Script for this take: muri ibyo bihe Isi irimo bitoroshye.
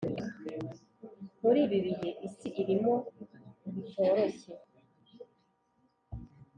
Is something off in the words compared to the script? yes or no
yes